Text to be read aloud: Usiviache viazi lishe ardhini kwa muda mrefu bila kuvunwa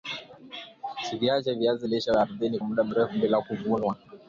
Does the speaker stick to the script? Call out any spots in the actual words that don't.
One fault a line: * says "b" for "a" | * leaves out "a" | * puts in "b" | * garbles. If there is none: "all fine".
* leaves out "kwa"